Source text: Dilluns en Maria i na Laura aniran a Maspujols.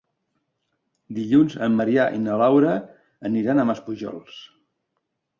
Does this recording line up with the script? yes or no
yes